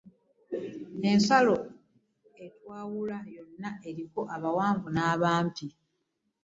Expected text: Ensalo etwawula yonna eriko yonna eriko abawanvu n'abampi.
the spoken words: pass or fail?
fail